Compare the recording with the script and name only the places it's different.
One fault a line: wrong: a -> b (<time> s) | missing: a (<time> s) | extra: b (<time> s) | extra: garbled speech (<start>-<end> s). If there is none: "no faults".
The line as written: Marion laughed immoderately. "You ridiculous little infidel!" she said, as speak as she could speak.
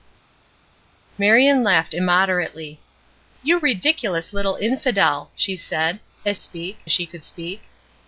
no faults